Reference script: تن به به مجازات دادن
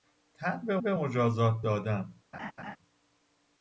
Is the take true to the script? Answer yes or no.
yes